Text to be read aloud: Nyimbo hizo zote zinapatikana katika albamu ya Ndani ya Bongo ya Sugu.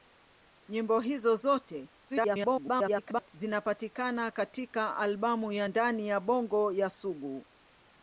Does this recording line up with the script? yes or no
no